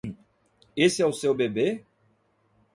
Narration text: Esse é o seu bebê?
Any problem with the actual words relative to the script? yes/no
no